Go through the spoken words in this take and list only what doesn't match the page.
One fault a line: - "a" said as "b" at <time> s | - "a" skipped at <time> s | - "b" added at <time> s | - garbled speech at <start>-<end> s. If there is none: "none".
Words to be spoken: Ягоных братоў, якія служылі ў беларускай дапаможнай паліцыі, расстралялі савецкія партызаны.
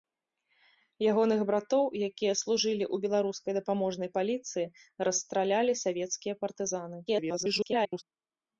- garbled speech at 7.1-8.0 s